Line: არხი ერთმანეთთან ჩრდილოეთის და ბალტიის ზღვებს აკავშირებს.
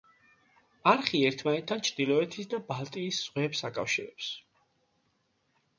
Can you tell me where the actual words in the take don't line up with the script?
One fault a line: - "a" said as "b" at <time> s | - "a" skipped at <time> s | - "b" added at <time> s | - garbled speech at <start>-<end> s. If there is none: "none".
none